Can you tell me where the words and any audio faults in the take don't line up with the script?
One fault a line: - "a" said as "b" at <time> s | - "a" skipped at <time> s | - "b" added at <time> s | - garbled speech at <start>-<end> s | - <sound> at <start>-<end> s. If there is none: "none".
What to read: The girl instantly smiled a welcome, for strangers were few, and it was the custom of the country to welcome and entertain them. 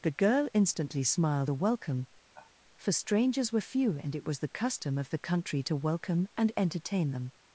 - sigh at 2.3-2.5 s